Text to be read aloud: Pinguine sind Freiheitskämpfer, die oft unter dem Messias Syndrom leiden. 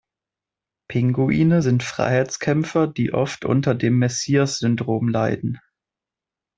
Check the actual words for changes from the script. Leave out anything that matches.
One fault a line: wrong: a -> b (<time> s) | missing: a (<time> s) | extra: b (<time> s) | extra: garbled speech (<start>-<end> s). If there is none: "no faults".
no faults